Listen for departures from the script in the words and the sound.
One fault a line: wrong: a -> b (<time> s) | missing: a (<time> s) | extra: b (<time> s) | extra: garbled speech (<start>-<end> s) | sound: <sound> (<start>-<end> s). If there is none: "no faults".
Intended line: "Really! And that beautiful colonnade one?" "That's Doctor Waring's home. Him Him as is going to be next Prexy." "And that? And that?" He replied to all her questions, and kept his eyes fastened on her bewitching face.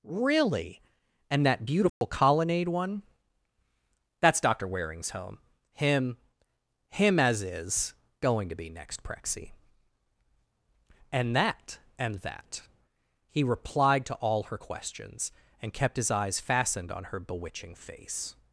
sound: dropout (1.9-2.0 s)